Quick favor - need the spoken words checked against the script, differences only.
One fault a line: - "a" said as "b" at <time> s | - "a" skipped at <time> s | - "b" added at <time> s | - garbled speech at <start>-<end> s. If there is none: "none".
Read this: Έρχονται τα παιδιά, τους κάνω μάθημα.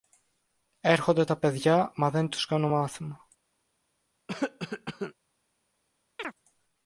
- "μα δεν" added at 2.0 s